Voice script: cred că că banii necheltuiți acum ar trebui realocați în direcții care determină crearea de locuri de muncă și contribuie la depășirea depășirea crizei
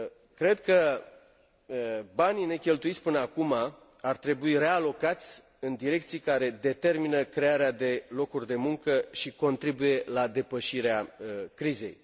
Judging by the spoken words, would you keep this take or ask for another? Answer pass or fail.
fail